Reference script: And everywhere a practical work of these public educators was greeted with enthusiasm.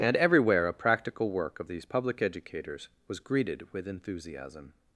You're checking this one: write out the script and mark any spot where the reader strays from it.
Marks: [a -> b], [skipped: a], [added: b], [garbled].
And everywhere a practical work of these public educators was greeted with enthusiasm.